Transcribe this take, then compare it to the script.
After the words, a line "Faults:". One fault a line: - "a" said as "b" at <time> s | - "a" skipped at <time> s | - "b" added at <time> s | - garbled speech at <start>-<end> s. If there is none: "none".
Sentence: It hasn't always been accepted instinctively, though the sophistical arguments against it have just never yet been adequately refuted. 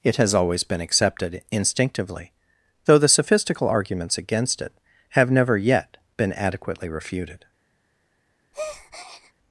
It has always been accepted instinctively, though the sophistical arguments against it have never yet been adequately refuted.
Faults:
- "hasn't" said as "has" at 0.1 s
- "just" skipped at 5.3 s